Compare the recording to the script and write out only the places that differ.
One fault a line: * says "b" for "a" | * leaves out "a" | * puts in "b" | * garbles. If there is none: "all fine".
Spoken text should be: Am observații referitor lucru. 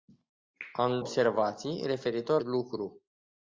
all fine